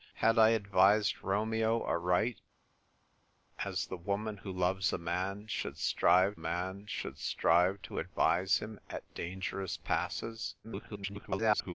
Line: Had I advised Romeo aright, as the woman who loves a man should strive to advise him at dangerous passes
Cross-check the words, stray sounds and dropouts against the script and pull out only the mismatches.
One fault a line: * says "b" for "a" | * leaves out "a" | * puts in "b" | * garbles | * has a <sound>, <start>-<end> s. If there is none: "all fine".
* puts in "man should strive"
* garbles